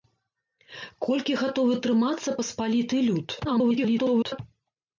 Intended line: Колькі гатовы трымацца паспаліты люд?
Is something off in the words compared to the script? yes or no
yes